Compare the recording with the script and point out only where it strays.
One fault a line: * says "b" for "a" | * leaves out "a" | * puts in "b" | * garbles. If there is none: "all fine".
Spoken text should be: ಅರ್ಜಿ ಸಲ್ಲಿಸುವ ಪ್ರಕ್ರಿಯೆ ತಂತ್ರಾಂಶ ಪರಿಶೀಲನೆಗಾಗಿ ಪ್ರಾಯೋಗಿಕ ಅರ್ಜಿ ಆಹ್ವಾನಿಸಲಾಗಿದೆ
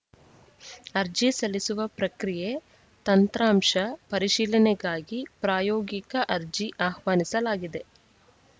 all fine